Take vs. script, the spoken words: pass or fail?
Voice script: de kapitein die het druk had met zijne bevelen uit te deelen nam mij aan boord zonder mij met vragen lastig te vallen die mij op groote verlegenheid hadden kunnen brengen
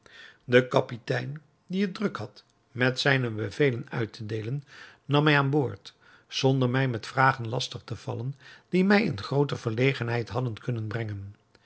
fail